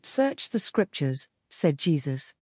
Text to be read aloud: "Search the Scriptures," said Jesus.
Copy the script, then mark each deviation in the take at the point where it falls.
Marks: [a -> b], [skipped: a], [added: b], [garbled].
"Search the Scriptures," said Jesus.